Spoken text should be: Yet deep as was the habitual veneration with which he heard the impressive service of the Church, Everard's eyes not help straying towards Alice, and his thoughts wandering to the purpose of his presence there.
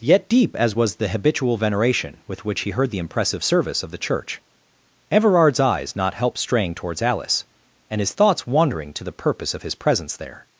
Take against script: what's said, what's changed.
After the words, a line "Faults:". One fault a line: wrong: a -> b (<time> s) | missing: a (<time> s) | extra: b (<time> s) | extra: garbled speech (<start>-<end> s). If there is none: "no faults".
Yet deep as was the habitual veneration with which he heard the impressive service of the Church, Everard's eyes not help straying towards Alice, and his thoughts wandering to the purpose of his presence there.
Faults:
no faults